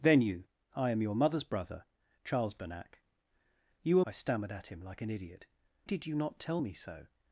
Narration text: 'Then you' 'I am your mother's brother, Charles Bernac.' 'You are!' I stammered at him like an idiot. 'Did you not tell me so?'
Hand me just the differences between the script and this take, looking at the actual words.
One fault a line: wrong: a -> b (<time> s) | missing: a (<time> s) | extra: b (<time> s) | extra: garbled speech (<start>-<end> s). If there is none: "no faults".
no faults